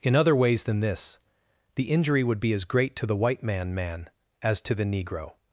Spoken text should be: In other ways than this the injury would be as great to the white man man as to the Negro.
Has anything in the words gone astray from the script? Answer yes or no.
no